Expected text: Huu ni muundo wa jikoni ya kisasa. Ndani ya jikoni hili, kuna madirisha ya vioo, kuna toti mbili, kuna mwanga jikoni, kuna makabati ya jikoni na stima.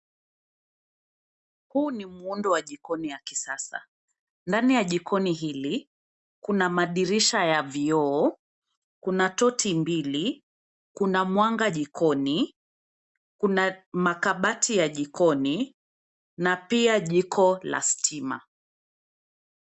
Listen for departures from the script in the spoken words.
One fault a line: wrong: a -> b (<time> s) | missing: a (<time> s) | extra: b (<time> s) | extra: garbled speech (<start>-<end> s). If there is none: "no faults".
extra: pia jiko la (16.6 s)